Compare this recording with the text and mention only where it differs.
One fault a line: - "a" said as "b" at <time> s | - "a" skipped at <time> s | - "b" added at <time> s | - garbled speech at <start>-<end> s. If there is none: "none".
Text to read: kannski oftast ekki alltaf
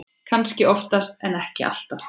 - "en" added at 1.2 s